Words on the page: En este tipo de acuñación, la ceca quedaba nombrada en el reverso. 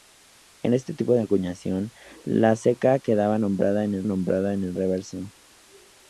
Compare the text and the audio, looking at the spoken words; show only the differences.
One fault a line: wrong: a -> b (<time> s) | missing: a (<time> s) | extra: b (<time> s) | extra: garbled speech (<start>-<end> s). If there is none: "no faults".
extra: nombrada en el (4.0 s)